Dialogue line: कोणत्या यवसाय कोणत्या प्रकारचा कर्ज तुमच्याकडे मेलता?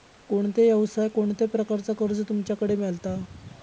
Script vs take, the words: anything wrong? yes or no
no